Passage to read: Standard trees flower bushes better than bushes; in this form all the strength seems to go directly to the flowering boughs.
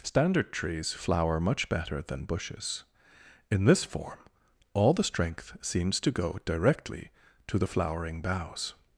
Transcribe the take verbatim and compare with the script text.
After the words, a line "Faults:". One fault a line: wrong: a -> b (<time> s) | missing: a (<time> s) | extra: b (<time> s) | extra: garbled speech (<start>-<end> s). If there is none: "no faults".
Standard trees flower much better than bushes; in this form all the strength seems to go directly to the flowering boughs.
Faults:
wrong: bushes -> much (1.4 s)